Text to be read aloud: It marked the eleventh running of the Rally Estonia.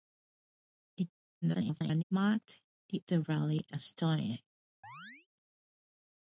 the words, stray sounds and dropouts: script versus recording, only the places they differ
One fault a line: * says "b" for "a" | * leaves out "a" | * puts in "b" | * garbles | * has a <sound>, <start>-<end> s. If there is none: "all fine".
* garbles
* leaves out "eleventh running of"
* has a chirp, 4.8-5.3 s